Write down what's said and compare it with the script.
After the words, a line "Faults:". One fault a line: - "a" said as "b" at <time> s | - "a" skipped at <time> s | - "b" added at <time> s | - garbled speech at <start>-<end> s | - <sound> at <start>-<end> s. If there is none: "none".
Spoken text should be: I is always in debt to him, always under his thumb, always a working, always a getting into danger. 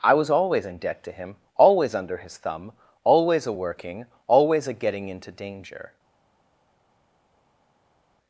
I was always in debt to him, always under his thumb, always a working, always a getting into danger.
Faults:
- "is" said as "was" at 0.1 s